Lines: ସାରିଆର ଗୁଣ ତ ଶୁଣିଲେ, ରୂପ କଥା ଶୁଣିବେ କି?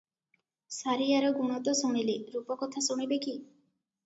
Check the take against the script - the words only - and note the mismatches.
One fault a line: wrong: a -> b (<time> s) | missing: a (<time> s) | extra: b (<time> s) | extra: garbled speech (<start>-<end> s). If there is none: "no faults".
no faults